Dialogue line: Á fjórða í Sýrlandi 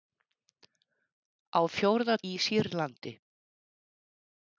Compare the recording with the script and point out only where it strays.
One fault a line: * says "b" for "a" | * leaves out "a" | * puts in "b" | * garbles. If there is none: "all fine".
all fine